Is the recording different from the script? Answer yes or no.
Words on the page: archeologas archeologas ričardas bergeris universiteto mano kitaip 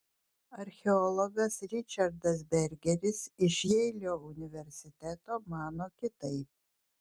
yes